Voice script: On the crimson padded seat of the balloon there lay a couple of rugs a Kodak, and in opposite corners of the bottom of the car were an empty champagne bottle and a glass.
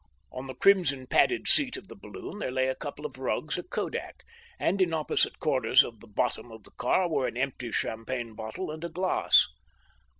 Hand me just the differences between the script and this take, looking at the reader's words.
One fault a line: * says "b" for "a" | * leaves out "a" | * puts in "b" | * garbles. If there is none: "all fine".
all fine